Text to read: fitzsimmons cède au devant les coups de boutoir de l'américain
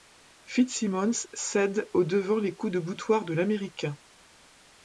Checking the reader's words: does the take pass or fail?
pass